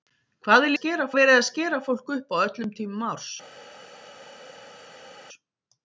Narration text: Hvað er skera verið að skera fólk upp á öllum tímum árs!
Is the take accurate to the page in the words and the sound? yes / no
yes